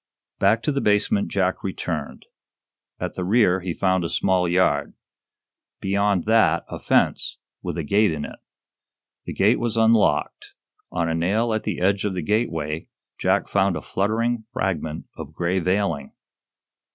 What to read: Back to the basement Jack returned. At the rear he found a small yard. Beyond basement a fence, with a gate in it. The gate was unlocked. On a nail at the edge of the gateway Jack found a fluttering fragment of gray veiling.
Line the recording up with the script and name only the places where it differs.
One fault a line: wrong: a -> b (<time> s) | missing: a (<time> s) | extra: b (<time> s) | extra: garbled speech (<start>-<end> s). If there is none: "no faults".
wrong: basement -> that (6.2 s)